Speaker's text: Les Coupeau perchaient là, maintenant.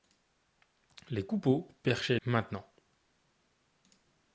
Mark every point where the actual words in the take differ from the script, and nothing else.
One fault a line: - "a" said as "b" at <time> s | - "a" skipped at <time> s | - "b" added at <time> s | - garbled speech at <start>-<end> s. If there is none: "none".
- "là" skipped at 2.2 s